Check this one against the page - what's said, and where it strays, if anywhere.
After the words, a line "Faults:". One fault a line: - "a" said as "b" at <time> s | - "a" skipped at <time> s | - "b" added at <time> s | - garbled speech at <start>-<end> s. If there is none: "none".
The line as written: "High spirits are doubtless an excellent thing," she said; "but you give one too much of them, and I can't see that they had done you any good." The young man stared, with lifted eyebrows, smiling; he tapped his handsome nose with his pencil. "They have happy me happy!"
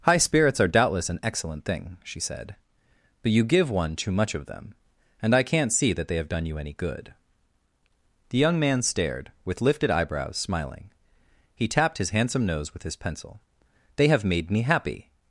"High spirits are doubtless an excellent thing," she said; "but you give one too much of them, and I can't see that they have done you any good." The young man stared, with lifted eyebrows, smiling; he tapped his handsome nose with his pencil. "They have made me happy!"
Faults:
- "had" said as "have" at 6.2 s
- "happy" said as "made" at 14.2 s